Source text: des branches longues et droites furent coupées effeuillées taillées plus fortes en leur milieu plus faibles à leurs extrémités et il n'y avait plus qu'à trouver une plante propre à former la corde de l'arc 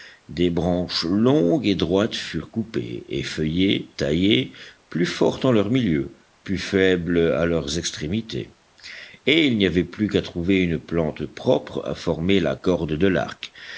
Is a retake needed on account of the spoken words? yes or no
no